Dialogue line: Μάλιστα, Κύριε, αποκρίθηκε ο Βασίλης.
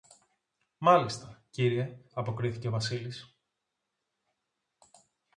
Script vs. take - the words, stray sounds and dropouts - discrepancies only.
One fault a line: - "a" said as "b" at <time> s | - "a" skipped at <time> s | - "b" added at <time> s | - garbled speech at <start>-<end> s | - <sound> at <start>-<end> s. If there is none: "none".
none